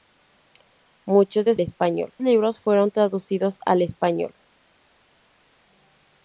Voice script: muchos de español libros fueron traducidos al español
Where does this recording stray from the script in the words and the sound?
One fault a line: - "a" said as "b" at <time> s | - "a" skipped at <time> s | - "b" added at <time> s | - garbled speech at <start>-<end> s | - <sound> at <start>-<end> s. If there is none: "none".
none